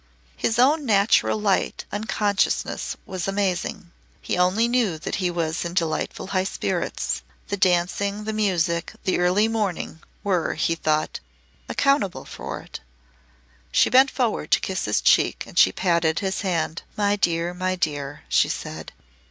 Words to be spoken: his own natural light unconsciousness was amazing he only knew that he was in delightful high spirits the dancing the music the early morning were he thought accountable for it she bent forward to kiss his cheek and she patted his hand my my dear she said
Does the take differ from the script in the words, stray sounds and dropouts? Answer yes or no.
yes